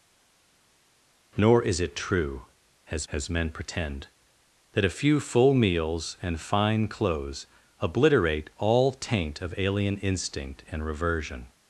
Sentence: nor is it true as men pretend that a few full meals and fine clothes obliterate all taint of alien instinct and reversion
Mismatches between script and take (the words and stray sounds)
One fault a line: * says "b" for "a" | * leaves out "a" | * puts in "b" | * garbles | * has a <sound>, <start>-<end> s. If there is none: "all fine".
* puts in "as"